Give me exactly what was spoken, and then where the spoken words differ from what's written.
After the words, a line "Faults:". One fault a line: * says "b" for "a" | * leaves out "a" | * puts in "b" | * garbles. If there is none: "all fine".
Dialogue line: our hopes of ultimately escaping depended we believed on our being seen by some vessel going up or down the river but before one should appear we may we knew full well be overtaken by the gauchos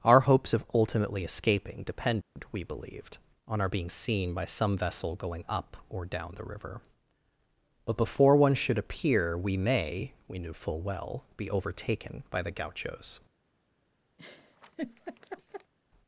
our hopes of ultimately escaping depended we believed on our being seen by some vessel going up or down the river but before one should appear we may we knew full well be overtaken by the gauchos
Faults:
all fine